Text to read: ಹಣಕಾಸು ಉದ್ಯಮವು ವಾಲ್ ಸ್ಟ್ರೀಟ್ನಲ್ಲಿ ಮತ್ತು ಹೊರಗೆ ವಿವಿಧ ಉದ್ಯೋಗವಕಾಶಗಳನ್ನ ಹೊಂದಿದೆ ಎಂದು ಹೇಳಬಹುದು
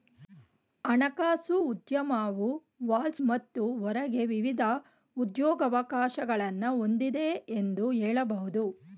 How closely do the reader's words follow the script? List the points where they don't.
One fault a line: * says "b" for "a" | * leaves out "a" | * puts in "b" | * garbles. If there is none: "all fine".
* leaves out "ಸ್ಟ್ರೀಟ್ನಲ್ಲಿ"